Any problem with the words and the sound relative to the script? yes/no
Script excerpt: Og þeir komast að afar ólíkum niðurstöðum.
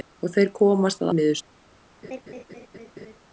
yes